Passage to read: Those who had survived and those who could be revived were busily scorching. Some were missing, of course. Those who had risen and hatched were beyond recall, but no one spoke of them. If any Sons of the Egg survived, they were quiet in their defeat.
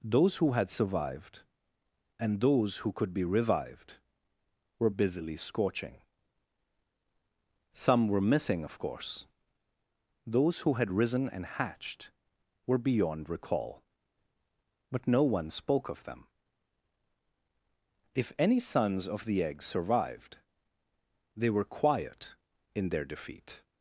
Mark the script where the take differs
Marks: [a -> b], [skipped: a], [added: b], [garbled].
Those who had survived and those who could be revived were busily scorching. Some were missing, of course. Those who had risen and hatched were beyond recall, but no one spoke of them. If any Sons of the Egg survived, they were quiet in their defeat.